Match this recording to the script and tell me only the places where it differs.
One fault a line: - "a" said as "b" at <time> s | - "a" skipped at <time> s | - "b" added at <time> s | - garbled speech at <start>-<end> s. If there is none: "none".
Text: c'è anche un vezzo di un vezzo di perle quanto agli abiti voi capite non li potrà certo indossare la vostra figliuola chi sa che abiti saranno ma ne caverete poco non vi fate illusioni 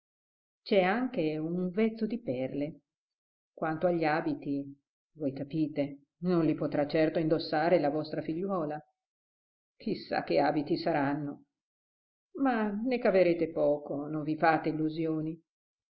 - "un vezzo di" skipped at 2.2 s